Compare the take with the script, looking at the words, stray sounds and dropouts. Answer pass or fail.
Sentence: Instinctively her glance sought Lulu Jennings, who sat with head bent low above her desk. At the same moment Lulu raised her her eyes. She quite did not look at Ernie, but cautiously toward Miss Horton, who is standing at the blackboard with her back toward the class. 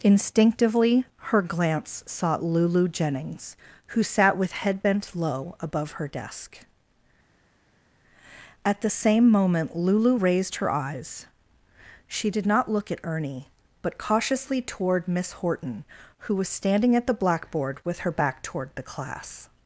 fail